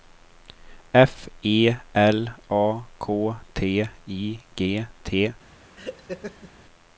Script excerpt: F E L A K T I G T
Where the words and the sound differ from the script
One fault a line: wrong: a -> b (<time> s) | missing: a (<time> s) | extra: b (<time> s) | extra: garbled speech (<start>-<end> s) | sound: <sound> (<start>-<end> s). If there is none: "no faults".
sound: laugh (5.8-6.5 s)